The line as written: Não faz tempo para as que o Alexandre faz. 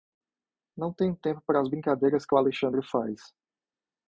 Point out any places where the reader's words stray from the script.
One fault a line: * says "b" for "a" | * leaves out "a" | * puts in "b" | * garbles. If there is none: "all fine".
* says "tenho" for "faz"
* puts in "brincadeiras"